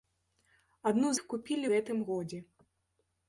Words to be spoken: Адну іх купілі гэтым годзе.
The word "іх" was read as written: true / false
true